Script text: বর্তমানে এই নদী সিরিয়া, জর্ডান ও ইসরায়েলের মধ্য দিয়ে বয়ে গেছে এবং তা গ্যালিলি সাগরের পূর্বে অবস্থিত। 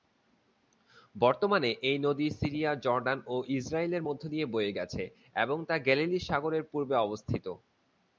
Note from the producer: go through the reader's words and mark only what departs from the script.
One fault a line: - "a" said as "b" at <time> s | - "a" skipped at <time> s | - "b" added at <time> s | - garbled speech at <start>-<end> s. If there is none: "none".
none